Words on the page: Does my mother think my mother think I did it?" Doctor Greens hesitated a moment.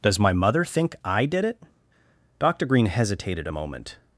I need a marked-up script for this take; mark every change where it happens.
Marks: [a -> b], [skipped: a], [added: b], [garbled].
Does my mother think [skipped: my mother think] I did it?" Doctor [Greens -> Green] hesitated a moment.